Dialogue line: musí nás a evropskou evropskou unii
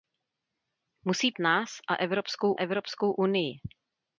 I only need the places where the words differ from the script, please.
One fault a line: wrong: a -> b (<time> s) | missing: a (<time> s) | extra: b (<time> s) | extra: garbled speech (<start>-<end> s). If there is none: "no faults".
no faults